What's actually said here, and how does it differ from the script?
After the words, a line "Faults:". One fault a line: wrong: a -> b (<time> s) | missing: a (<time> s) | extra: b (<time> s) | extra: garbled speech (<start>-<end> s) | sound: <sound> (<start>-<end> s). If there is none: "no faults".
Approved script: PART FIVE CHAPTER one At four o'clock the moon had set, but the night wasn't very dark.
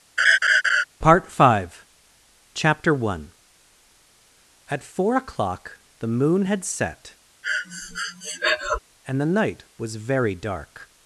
PART FIVE CHAPTER one At four o'clock the moon had set, and the night was very dark.
Faults:
sound: laugh (0.2-0.8 s)
sound: breath (7.4-8.8 s)
wrong: but -> and (9.1 s)
wrong: wasn't -> was (9.8 s)